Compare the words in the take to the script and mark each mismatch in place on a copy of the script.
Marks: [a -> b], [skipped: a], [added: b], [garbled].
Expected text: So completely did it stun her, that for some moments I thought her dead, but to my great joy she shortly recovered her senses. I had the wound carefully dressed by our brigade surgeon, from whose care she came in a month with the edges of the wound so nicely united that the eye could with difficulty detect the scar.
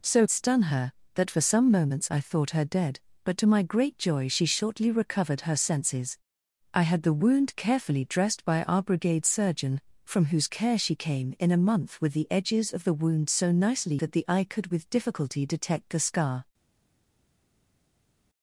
So [skipped: completely did it] stun her, that for some moments I thought her dead, but to my great joy she shortly recovered her senses. I had the wound carefully dressed by our brigade surgeon, from whose care she came in a month with the edges of the wound so nicely [skipped: united] that the eye could with difficulty detect the scar.